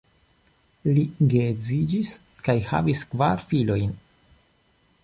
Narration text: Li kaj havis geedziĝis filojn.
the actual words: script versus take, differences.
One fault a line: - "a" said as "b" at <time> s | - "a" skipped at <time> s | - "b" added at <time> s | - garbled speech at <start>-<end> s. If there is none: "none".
- "geedziĝis" added at 1.3 s
- "geedziĝis" said as "kvar" at 3.1 s